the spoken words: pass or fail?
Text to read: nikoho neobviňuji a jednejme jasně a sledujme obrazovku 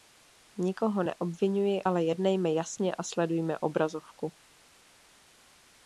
fail